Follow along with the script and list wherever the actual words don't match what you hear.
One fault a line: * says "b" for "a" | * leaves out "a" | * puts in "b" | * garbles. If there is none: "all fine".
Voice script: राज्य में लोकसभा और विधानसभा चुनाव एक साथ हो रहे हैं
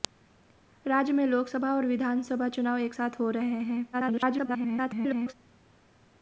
* garbles